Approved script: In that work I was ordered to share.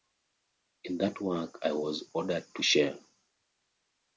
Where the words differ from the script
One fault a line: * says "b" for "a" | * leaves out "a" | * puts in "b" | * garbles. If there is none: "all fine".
all fine